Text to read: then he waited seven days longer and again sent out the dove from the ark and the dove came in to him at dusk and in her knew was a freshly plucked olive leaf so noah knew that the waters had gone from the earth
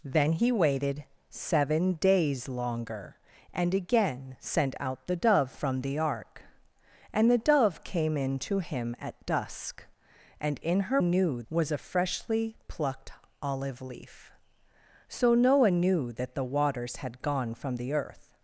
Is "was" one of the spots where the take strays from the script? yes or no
no